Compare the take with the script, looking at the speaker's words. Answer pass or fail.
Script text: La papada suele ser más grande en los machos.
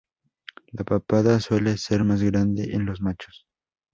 pass